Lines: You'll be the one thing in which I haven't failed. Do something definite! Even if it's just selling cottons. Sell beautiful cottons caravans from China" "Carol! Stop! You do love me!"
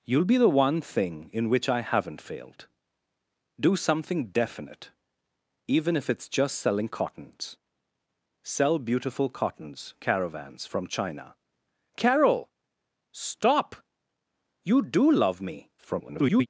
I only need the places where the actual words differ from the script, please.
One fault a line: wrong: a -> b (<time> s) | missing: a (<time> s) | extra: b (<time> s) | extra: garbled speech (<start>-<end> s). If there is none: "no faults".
extra: garbled speech (15.8-16.5 s)